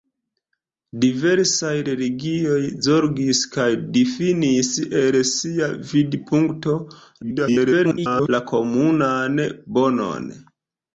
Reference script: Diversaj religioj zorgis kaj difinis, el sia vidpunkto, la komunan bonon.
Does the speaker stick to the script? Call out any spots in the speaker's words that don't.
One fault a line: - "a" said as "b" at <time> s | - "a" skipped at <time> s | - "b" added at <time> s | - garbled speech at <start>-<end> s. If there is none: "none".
- garbled speech at 7.2-8.3 s